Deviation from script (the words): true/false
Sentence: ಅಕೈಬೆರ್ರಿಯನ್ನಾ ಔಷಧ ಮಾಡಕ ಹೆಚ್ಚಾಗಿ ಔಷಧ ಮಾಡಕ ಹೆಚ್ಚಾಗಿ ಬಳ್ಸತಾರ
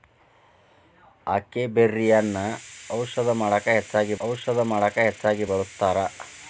false